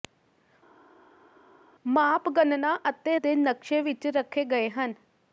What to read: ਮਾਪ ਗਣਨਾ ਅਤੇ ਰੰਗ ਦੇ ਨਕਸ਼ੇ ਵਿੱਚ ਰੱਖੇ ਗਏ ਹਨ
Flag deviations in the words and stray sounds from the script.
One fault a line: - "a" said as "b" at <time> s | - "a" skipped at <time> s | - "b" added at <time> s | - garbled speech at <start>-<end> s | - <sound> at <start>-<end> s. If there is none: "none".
- "ਰੰਗ" skipped at 3.2 s